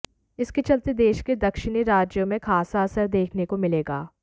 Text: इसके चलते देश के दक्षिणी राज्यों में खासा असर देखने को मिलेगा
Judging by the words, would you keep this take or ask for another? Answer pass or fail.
pass